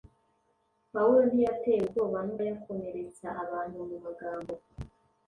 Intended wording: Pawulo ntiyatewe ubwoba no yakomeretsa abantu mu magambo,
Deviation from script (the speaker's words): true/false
false